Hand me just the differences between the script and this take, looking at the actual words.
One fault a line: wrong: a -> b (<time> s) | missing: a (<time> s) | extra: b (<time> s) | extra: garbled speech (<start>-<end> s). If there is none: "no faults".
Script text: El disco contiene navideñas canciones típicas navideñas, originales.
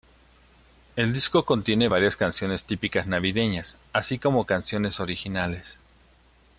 wrong: navideñas -> varias (1.8 s)
extra: así como canciones (3.9 s)